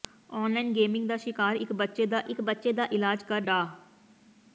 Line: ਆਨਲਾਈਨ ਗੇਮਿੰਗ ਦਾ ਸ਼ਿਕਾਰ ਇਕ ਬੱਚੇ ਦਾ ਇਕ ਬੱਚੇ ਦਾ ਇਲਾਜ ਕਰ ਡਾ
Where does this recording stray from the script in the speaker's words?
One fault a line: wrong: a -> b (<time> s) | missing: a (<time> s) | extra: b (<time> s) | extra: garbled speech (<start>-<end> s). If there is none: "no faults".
no faults